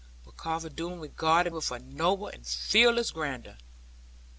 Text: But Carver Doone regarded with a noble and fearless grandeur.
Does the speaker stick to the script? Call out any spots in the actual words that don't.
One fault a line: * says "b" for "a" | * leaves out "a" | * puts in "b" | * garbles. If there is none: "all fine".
all fine